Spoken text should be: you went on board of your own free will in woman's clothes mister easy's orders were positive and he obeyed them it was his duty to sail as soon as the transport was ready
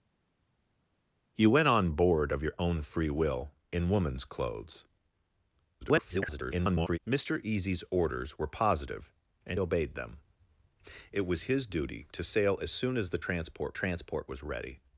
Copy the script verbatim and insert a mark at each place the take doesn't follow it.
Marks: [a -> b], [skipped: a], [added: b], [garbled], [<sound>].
you went on board of your own free will in woman's clothes [garbled] mister easy's orders were positive and [skipped: he] obeyed them it was his duty to sail as soon as the transport [added: transport] was ready